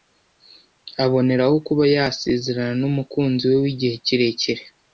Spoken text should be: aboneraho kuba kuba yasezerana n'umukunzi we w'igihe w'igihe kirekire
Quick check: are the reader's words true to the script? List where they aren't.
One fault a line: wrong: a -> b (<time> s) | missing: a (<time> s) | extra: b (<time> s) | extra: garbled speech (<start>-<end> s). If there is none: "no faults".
missing: kuba (1.8 s)
missing: w'igihe (3.9 s)